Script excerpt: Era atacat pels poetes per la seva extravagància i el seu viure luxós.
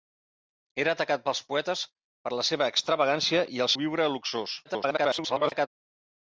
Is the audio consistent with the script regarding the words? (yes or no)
no